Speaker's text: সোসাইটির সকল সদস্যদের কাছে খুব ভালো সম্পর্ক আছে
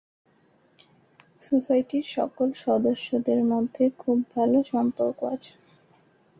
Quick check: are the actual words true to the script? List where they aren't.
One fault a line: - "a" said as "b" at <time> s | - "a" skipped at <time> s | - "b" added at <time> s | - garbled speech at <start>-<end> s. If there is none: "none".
- "কাছে" said as "মধ্যে" at 3.5 s